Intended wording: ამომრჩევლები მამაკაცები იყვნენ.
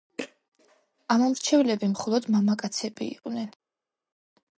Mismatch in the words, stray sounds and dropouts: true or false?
true